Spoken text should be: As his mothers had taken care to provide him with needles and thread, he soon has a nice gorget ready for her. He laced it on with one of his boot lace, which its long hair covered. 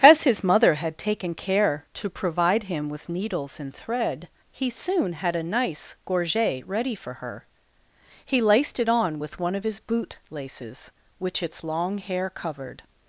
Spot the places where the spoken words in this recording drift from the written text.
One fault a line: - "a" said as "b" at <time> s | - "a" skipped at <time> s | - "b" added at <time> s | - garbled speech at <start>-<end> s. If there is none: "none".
- "mothers" said as "mother" at 0.4 s
- "has" said as "had" at 5.1 s
- "lace" said as "laces" at 10.3 s